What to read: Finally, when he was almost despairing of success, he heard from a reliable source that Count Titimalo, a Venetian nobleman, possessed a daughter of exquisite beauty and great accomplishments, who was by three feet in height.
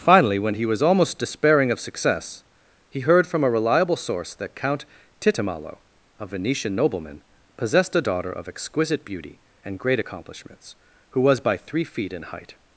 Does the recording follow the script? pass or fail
pass